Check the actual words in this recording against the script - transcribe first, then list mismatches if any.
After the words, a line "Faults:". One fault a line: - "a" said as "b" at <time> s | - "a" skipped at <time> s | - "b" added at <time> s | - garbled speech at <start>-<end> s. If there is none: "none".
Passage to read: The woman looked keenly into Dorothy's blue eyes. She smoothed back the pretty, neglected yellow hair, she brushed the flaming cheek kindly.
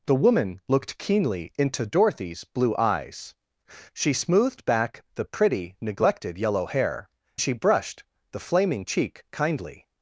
The woman looked keenly into Dorothy's blue eyes. She smoothed back the pretty, neglected yellow hair, she brushed the flaming cheek kindly.
Faults:
none